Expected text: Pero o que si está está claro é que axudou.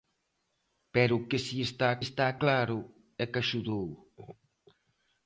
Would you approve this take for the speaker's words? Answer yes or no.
yes